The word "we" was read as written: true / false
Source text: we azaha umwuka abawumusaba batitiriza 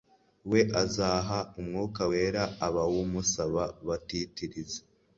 true